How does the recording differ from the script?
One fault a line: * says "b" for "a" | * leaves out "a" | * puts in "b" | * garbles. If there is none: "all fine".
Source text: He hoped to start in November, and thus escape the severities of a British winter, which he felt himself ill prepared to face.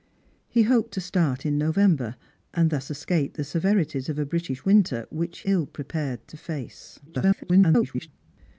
* leaves out "he felt himself"
* garbles